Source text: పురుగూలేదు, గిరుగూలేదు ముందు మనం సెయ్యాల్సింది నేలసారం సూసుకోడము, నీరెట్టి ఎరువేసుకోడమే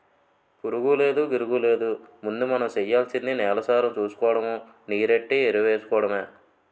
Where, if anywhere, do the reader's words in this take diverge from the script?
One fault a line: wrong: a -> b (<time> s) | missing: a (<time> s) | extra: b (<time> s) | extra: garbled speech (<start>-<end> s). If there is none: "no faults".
no faults